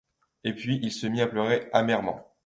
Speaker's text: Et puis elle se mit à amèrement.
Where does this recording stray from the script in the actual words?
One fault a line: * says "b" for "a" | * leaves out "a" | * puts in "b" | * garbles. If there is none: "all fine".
* says "il" for "elle"
* puts in "pleurer"